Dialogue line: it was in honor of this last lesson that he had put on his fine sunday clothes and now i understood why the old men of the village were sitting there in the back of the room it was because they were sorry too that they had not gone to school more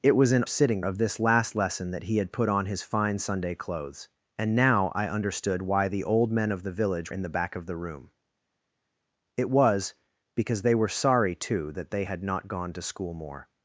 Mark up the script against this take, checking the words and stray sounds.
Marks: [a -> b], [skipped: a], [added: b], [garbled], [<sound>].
it was in [honor -> sitting] of this last lesson that he had put on his fine sunday clothes and now i understood why the old men of the village [skipped: were sitting there] in the back of the room it was because they were sorry too that they had not gone to school more